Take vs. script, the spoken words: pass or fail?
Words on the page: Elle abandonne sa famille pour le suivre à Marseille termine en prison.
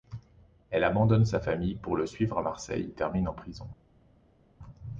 pass